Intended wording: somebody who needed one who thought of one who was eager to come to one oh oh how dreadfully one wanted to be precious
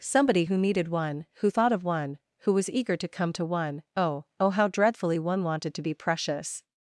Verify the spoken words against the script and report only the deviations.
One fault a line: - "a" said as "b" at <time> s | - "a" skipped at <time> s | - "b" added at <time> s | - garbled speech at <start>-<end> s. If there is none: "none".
none